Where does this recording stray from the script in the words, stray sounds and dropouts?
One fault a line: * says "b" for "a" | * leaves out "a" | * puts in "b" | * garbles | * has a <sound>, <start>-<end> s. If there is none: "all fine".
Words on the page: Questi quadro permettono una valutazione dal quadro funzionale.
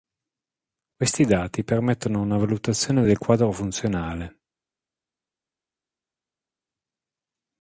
* says "dati" for "quadro"
* says "del" for "dal"